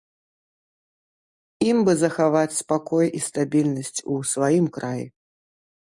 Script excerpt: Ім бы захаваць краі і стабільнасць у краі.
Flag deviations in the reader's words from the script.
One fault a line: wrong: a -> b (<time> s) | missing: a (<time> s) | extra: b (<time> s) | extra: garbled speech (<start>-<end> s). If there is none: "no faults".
wrong: краі -> спакой (2.6 s)
extra: сваім (4.3 s)